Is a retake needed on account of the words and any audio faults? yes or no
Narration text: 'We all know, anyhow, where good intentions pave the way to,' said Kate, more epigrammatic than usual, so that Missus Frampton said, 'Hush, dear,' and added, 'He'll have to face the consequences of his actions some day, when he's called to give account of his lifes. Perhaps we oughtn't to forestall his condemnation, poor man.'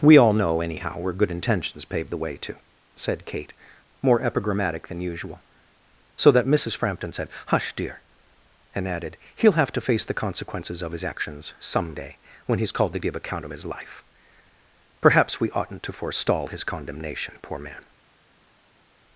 yes